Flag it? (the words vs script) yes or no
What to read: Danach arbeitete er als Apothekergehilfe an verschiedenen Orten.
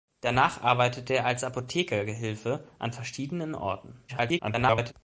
yes